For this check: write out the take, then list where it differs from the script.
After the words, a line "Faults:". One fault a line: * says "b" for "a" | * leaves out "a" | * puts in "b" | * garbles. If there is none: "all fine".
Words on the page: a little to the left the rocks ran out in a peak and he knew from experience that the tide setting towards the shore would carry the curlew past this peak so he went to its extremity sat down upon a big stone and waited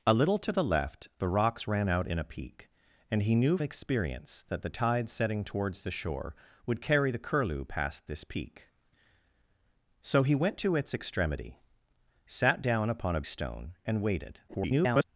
a little to the left the rocks ran out in a peak and he knew experience that the tide setting towards the shore would carry the curlew past this peak so he went to its extremity sat down upon a stone and waited [garbled]
Faults:
* leaves out "from"
* leaves out "big"
* garbles